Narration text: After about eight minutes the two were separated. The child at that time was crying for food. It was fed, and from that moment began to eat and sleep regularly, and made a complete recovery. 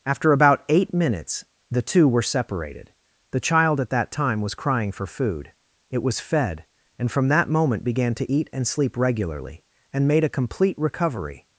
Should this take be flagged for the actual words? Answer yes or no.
no